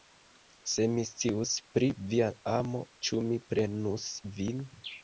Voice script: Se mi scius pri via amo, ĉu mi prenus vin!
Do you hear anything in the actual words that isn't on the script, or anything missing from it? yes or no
no